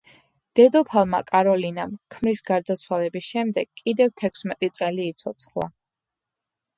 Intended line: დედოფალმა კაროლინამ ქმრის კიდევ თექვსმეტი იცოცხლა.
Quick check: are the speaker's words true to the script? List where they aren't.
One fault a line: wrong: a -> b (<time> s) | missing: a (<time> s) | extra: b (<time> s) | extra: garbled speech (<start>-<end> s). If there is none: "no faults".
extra: გარდაცვალების შემდეგ (2.5 s)
extra: წელი (4.8 s)